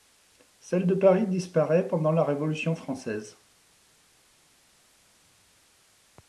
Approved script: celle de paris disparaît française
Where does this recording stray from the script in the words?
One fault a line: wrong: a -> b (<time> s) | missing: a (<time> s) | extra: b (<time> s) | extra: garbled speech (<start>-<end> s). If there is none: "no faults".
extra: pendant la révolution (1.8 s)